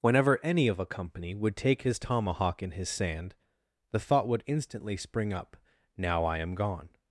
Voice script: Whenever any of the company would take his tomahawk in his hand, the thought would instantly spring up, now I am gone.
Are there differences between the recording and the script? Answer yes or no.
yes